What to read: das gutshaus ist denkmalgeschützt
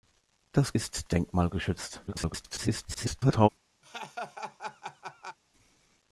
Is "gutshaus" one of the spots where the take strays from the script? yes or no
yes